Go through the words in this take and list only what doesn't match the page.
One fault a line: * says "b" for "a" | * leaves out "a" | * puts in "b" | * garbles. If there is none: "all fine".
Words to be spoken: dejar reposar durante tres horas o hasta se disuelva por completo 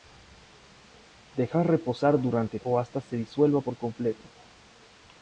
* leaves out "tres horas"